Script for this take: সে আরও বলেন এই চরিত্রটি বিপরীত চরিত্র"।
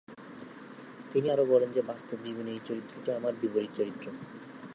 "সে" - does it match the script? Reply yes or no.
no